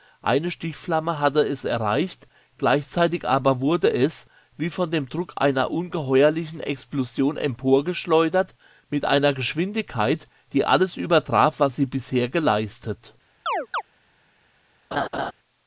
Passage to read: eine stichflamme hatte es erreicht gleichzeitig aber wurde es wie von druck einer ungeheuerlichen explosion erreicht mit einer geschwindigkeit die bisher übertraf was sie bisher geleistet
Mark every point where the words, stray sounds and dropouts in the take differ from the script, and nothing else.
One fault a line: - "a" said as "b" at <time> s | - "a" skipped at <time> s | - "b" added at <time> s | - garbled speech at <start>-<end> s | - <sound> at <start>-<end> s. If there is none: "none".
- "dem" added at 4.9 s
- "erreicht" said as "emporgeschleudert" at 7.4 s
- "bisher" said as "alles" at 10.6 s
- chirp at 13.5-13.8 s
- laugh at 14.9-15.3 s